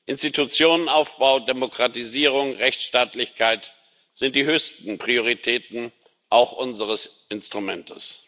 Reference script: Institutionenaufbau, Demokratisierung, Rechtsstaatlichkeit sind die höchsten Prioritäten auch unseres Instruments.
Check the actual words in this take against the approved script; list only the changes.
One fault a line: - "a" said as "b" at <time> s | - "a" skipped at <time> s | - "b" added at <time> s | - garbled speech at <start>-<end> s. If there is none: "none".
none